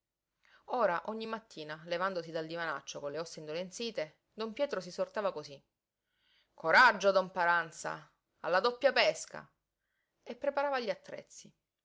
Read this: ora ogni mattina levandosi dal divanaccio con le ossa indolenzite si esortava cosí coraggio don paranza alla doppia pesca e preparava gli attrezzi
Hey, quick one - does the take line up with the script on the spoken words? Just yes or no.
no